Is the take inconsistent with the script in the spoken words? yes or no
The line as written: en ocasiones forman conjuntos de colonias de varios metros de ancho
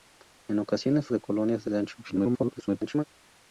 yes